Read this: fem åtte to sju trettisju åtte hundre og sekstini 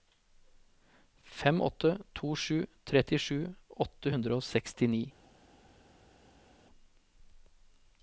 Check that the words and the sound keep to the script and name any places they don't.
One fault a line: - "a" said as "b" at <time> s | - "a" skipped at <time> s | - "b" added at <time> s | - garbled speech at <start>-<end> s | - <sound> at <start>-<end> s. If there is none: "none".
none